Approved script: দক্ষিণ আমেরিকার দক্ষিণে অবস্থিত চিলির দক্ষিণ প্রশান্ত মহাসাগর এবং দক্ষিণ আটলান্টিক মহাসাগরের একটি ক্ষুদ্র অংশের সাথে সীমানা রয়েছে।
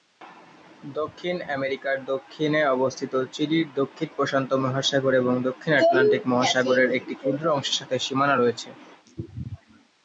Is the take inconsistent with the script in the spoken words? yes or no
no